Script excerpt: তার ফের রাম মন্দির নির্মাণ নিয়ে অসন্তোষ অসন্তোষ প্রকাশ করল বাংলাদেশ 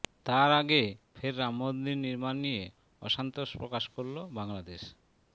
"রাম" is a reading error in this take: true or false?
false